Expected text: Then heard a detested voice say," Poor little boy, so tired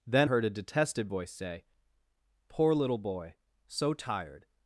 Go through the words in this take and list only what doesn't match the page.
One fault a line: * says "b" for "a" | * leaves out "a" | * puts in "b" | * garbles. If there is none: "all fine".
all fine